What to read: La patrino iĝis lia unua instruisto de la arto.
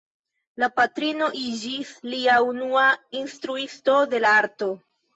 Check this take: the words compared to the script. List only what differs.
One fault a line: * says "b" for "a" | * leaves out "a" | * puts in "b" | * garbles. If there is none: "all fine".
all fine